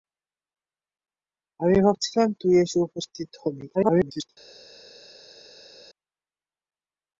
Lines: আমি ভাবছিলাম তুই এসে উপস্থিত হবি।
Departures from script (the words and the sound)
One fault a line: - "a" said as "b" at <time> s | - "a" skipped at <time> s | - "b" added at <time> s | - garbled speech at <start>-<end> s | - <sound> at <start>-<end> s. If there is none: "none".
- garbled speech at 3.7-4.3 s